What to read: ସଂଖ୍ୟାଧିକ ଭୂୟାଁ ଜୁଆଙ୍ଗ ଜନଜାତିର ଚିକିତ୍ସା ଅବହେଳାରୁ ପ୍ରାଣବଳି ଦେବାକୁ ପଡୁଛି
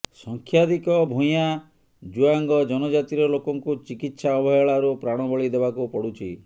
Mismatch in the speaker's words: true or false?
true